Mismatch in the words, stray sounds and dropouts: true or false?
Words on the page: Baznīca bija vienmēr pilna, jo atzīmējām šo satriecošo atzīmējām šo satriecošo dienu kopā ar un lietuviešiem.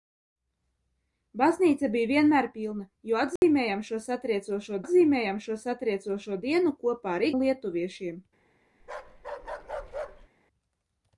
true